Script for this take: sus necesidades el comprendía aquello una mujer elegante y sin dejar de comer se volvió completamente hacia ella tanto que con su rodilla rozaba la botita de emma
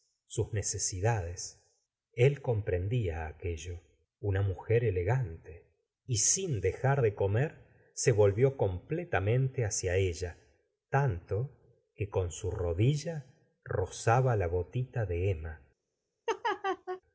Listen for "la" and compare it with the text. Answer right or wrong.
right